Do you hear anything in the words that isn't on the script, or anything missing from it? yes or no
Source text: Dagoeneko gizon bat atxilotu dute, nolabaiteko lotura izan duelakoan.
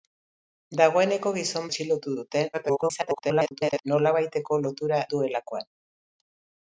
yes